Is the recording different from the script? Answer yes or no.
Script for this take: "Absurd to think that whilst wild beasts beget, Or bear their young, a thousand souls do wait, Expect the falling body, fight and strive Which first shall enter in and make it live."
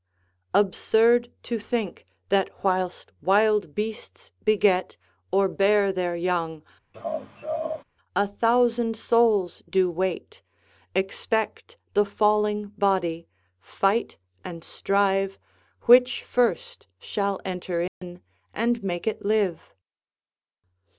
no